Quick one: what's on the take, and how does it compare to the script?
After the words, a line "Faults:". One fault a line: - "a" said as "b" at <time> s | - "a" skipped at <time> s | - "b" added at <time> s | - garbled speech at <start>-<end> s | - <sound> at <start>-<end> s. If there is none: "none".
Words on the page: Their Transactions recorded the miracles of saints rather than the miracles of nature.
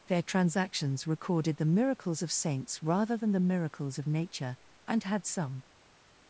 Their Transactions recorded the miracles of saints rather than the miracles of nature. And had some
Faults:
- "And had some" added at 4.9 s